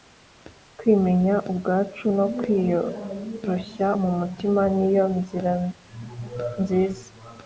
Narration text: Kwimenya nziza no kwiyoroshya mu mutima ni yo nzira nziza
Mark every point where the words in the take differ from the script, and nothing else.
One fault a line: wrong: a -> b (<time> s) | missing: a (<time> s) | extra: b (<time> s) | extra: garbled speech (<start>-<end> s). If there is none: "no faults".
wrong: nziza -> ubwacu (1.5 s)